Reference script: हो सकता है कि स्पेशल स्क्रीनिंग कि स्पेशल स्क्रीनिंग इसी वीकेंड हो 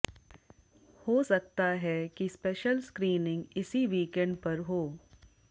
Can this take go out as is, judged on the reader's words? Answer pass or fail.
fail